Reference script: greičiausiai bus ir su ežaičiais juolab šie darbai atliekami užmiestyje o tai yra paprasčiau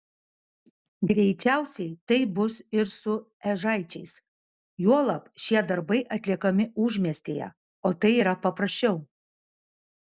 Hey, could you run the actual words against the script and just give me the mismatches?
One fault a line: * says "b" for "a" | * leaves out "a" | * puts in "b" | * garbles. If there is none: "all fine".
* puts in "taip"